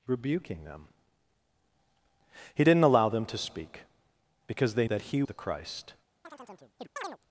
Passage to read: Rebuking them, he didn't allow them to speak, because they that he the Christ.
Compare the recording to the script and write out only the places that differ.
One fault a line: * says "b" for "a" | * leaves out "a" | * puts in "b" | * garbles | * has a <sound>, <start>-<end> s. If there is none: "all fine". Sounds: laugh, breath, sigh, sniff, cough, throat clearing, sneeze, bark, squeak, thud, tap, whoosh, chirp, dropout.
* has a chirp, 6.2-7.2 s